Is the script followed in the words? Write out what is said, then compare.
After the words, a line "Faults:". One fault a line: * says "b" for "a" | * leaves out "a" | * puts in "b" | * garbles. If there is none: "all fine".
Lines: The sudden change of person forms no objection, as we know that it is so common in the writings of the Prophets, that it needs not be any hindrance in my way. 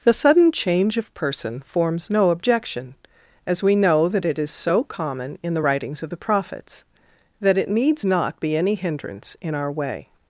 The sudden change of person forms no objection, as we know that it is so common in the writings of the Prophets, that it needs not be any hindrance in our way.
Faults:
* says "our" for "my"